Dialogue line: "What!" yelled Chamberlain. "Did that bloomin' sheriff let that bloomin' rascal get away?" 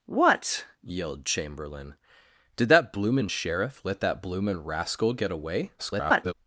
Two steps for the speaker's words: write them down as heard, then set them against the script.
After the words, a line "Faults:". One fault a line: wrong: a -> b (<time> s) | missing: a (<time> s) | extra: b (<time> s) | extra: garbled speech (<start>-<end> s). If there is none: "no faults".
"What!" yelled Chamberlain. "Did that bloomin' sheriff let that bloomin' rascal get away?" [garbled]
Faults:
extra: garbled speech (5.8-6.3 s)